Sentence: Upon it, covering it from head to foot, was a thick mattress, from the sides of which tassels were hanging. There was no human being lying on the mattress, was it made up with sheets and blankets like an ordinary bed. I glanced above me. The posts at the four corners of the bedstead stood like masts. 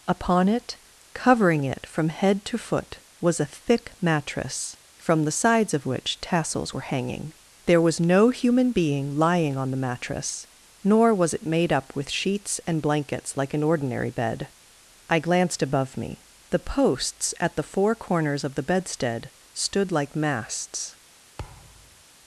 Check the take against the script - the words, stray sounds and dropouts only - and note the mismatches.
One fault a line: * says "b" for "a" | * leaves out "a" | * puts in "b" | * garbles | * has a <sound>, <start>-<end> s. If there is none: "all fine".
* puts in "nor"
* has a thud, 21.4-22.0 s